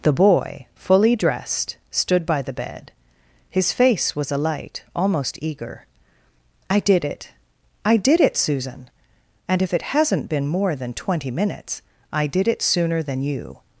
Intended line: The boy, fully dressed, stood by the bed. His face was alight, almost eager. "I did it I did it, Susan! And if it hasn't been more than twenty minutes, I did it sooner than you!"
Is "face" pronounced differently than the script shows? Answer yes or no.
no